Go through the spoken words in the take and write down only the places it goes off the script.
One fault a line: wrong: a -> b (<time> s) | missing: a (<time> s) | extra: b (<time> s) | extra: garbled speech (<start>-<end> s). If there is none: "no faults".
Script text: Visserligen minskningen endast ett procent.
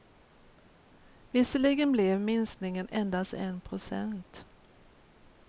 extra: blev (1.9 s)
wrong: ett -> en (3.3 s)